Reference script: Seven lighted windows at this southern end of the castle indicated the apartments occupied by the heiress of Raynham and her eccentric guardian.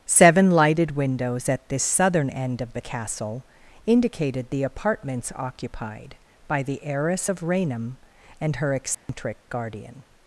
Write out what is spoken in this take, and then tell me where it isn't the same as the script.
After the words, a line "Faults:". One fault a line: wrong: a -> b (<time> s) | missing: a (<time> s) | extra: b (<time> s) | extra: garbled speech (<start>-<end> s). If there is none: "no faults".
Seven lighted windows at this southern end of the castle indicated the apartments occupied by the heiress of Raynham and her eccentric guardian.
Faults:
no faults